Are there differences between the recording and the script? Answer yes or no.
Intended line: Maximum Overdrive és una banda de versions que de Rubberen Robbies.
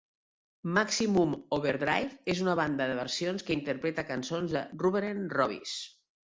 yes